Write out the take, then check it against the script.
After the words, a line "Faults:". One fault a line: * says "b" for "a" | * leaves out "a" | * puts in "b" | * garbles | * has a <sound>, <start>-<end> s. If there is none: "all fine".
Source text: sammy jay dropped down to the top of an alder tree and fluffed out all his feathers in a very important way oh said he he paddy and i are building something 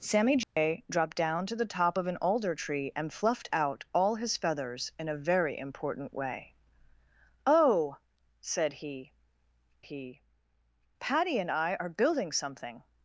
sammy jay dropped down to the top of an alder tree and fluffed out all his feathers in a very important way oh said he he paddy and i are building something
Faults:
* has a dropout, 0.4-0.6 s